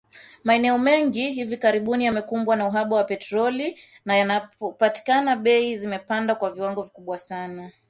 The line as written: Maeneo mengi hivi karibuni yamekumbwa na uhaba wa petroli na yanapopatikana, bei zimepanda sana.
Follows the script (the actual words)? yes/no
no